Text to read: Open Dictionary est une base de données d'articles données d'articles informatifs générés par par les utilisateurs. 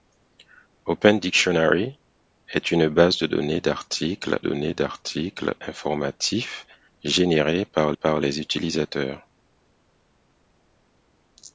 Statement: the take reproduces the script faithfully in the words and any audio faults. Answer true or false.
true